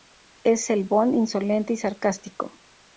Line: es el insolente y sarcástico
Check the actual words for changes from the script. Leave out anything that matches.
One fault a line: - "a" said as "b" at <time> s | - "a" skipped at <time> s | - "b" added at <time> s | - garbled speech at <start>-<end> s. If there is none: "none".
- "bond" added at 0.8 s